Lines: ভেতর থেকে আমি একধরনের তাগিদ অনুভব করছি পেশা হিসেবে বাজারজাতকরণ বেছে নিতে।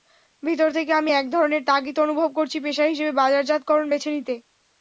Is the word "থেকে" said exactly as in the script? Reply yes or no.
yes